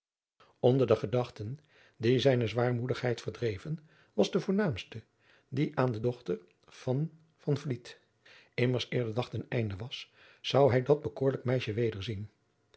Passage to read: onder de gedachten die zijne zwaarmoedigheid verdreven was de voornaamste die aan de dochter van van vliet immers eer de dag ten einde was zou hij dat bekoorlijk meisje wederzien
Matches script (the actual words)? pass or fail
pass